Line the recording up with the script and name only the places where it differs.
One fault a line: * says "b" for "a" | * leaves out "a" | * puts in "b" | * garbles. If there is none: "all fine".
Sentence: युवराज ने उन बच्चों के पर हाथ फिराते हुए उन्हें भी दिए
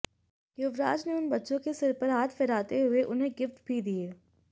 * puts in "सिर"
* puts in "गिफ्ट"